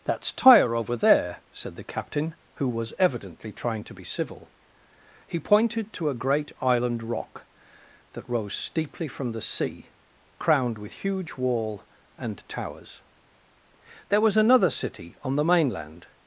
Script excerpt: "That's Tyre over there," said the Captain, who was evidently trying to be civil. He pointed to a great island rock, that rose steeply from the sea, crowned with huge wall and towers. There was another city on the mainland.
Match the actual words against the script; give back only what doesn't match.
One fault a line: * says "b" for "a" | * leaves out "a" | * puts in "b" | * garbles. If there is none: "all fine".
all fine